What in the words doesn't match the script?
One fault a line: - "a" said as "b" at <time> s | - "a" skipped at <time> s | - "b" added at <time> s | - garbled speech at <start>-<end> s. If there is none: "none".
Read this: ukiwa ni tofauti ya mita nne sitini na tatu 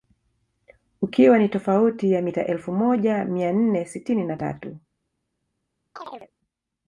- "elfu moja mia" added at 2.5 s